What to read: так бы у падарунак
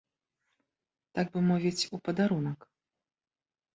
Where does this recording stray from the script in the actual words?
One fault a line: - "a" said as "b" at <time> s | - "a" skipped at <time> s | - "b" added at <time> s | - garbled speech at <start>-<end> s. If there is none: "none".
- "мовіць" added at 1.5 s